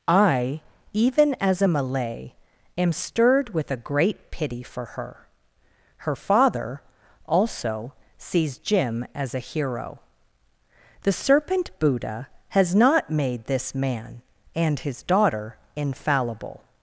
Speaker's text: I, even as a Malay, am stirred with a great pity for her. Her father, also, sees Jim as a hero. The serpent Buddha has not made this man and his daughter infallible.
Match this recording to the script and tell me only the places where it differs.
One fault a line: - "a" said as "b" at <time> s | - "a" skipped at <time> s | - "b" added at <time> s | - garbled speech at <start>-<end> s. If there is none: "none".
none